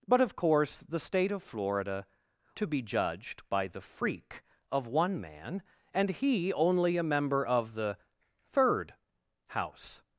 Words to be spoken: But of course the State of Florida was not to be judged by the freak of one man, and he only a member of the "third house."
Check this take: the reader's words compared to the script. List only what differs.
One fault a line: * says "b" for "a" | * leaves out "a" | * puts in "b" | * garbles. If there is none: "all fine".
* leaves out "was not"